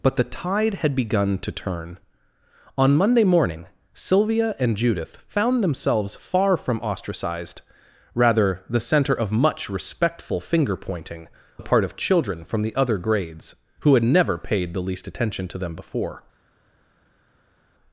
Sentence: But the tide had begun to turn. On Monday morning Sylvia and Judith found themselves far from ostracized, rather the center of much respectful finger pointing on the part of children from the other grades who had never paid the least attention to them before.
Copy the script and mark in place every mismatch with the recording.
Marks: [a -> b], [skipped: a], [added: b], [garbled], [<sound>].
But the tide had begun to turn. On Monday morning Sylvia and Judith found themselves far from ostracized, rather the center of much respectful finger pointing [skipped: on] the part of children from the other grades who had never paid the least attention to them before.